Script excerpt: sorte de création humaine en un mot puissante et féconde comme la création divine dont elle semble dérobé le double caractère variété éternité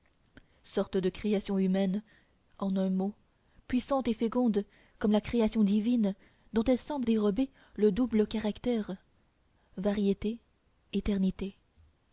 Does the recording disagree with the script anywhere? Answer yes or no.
no